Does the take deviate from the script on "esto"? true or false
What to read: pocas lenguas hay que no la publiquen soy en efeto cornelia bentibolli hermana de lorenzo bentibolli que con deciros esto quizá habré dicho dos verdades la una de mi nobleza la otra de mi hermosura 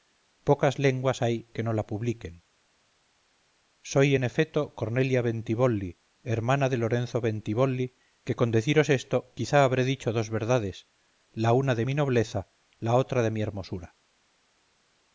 false